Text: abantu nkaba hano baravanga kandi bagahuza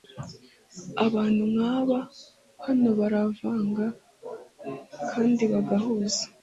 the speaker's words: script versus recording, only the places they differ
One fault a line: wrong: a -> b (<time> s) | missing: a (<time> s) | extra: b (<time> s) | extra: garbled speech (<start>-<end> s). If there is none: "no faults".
no faults